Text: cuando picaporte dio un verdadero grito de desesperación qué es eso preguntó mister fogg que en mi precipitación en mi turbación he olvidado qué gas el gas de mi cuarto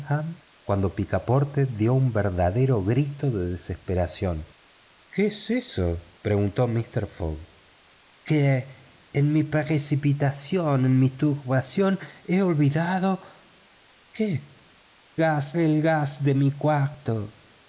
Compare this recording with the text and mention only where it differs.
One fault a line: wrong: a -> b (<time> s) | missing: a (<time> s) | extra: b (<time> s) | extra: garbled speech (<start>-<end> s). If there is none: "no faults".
no faults